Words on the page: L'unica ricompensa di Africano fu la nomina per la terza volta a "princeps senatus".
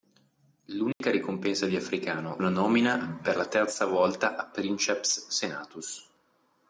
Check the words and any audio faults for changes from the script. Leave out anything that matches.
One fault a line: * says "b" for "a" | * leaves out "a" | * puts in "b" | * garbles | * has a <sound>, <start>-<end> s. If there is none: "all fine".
* has a dropout, 0.9-1.0 s
* leaves out "fu"